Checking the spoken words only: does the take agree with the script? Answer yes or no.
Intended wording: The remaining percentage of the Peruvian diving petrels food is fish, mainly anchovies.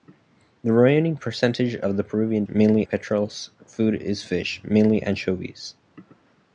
no